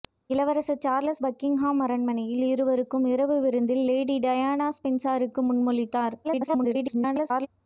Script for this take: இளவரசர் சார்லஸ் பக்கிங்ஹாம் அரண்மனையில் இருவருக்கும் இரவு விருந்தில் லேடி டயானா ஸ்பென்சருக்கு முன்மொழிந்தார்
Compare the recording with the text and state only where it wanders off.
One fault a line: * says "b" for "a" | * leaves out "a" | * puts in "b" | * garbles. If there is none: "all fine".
* garbles